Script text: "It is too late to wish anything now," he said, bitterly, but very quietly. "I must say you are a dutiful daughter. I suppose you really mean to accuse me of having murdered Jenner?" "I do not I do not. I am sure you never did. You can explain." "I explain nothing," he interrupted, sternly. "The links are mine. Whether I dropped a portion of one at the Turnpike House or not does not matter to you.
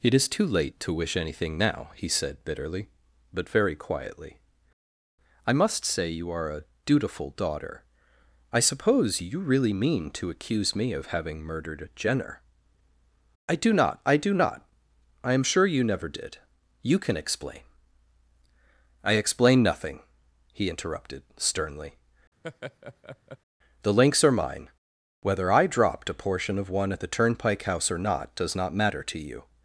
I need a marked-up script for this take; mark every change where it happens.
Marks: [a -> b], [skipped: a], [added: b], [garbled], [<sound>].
"It is too late to wish anything now," he said, bitterly, but very quietly. "I must say you are a dutiful daughter. I suppose you really mean to accuse me of having murdered Jenner?" "I do not I do not. I am sure you never did. You can explain." "I explain nothing," he interrupted, sternly. [laugh] "The links are mine. Whether I dropped a portion of one at the Turnpike House or not does not matter to you.